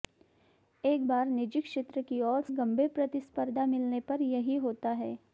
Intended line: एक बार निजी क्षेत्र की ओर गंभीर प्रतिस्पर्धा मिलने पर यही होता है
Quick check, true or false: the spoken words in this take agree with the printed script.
true